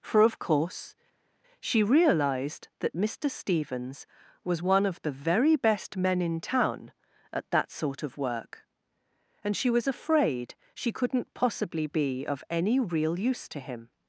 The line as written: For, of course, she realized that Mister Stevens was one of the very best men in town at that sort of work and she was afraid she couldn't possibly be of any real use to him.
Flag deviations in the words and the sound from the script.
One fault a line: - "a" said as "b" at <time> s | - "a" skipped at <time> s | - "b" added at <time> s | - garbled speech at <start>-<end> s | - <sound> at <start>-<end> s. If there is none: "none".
none